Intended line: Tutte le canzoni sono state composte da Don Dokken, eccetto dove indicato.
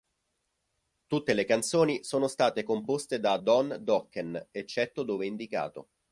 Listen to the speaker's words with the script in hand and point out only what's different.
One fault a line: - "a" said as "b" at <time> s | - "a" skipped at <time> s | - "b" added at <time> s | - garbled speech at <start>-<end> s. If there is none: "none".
none